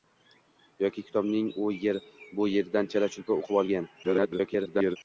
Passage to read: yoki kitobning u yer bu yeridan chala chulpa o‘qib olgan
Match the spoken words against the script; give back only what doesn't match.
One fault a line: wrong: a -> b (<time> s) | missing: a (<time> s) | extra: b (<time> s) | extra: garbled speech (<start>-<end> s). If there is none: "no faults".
extra: garbled speech (4.0-5.0 s)